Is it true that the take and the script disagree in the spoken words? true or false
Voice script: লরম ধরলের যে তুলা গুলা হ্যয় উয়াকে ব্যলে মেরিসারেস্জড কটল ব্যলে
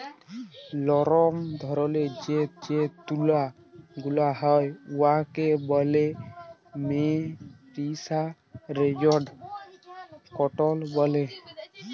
true